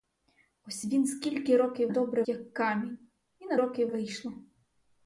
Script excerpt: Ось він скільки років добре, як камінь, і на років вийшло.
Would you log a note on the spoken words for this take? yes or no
no